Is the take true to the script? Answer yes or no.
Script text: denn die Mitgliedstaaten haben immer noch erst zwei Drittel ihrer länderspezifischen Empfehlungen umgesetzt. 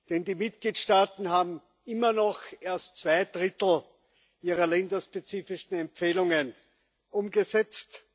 yes